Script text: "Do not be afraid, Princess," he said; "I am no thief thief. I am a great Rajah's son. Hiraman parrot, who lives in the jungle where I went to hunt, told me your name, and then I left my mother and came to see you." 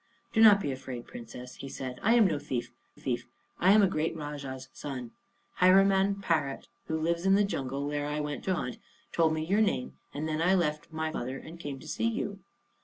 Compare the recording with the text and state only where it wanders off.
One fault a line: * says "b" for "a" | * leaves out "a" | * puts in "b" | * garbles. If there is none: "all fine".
all fine